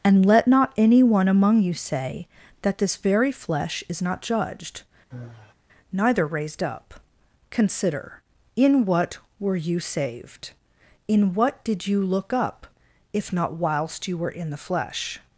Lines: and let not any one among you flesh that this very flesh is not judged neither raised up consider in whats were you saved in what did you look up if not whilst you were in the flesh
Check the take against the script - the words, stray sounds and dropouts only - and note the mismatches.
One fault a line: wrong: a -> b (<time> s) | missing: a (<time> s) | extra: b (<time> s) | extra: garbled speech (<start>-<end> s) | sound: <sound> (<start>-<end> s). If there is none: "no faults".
wrong: flesh -> say (1.7 s)
sound: sigh (5.1-5.5 s)
wrong: whats -> what (8.8 s)